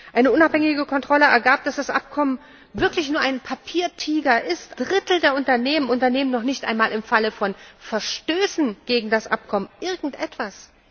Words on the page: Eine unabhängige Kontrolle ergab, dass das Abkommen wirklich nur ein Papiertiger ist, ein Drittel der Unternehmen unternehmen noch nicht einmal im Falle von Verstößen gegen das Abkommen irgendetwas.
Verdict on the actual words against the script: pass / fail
fail